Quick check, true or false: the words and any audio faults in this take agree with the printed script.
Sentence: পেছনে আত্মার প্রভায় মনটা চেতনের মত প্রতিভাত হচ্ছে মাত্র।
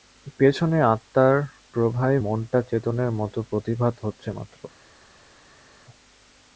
true